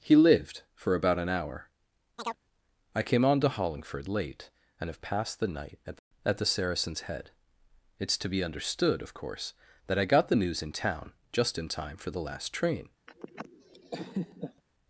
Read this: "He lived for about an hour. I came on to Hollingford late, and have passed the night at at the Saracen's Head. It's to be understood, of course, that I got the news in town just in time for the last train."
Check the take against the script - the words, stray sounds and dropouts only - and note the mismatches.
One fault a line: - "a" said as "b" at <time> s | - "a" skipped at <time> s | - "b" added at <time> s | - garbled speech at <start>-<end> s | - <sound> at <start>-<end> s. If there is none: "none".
- chirp at 2.2-2.4 s
- laugh at 13.1-14.6 s